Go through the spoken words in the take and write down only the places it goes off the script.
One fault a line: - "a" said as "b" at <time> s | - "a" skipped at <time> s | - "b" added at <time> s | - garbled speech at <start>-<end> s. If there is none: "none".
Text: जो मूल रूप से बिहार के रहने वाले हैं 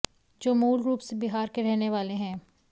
none